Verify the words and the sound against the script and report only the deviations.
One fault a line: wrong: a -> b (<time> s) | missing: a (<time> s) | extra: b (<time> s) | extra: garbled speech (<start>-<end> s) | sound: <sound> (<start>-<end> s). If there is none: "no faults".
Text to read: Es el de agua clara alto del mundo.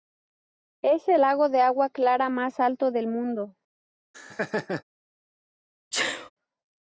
extra: lago (1.2 s)
extra: más (2.3 s)
sound: laugh (4.1-4.8 s)
sound: sneeze (5.9-6.3 s)